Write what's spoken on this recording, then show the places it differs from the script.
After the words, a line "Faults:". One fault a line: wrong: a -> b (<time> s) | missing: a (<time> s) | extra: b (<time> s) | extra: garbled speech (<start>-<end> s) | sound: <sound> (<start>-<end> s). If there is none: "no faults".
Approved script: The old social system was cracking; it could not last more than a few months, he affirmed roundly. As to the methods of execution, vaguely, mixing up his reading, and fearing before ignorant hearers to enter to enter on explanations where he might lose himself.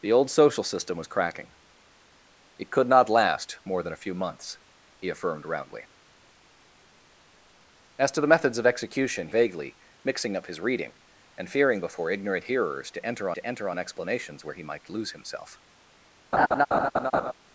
The old social system was cracking; it could not last more than a few months, he affirmed roundly. As to the methods of execution, vaguely, mixing up his reading, and fearing before ignorant hearers to enter to enter on explanations where he might lose himself.
Faults:
sound: laugh (16.3-17.3 s)